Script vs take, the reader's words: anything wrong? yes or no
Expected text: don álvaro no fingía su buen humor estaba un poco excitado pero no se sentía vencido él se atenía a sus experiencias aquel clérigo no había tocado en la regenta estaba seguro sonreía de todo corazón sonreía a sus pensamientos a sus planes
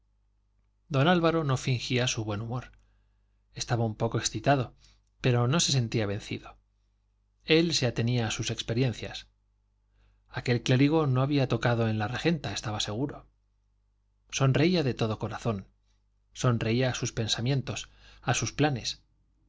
no